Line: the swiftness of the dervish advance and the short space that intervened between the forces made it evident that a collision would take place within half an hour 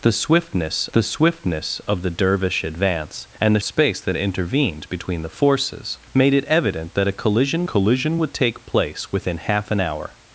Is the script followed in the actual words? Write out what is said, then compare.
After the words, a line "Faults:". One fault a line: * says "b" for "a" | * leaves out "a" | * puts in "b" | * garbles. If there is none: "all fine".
the swiftness the swiftness of the dervish advance and the space that intervened between the forces made it evident that a collision collision would take place within half an hour
Faults:
* puts in "the swiftness"
* leaves out "short"
* puts in "collision"